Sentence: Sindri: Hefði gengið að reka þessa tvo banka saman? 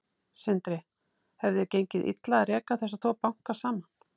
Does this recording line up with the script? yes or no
no